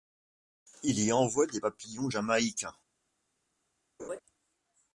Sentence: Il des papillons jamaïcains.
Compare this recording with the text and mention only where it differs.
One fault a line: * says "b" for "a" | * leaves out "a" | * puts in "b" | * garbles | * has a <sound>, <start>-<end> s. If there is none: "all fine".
* puts in "y envoie"
* has a laugh, 4.0-4.2 s